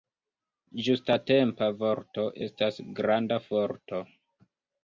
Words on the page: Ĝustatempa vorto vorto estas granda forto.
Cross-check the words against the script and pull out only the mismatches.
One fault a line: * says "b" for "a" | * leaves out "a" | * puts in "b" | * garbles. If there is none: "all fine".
* leaves out "vorto"